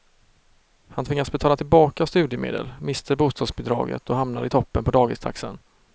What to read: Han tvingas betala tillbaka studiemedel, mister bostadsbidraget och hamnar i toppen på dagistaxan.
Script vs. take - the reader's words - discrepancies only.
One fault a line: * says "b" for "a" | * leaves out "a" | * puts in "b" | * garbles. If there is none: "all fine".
all fine